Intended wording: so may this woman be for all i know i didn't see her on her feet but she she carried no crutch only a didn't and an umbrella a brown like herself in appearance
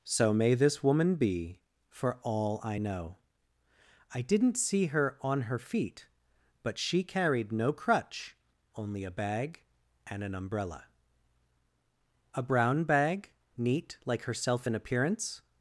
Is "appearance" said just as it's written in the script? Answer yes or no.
yes